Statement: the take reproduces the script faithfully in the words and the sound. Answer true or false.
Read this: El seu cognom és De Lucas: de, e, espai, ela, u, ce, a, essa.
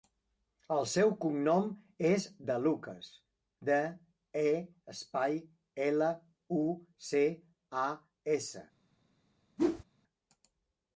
false